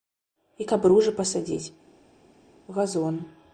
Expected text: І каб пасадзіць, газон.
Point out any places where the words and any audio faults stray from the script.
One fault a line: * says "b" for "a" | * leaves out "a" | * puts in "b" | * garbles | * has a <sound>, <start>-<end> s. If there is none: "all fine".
* puts in "ружы"